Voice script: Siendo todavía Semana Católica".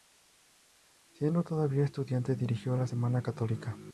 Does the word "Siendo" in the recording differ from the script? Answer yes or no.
no